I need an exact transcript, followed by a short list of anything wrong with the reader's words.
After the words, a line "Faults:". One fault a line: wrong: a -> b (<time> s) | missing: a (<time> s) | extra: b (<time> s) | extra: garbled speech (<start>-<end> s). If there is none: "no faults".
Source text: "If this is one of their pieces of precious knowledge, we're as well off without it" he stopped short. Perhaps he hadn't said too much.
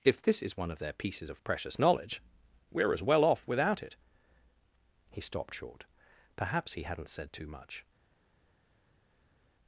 "If this is one of their pieces of precious knowledge, we're as well off without it" he stopped short. Perhaps he hadn't said too much.
Faults:
no faults